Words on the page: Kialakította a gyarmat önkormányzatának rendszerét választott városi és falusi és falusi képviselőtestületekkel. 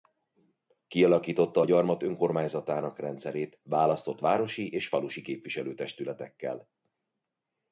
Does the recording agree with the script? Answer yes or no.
no